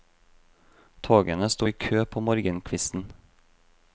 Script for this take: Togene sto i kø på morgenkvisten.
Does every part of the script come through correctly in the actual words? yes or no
yes